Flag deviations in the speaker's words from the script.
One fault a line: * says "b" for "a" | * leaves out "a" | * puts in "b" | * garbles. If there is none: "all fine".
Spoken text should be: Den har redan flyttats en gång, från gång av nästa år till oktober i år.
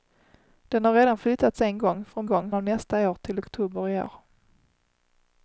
all fine